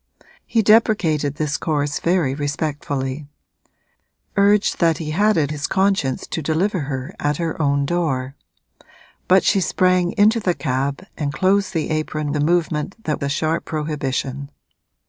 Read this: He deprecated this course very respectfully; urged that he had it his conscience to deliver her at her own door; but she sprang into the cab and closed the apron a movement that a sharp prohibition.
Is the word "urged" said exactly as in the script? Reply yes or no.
yes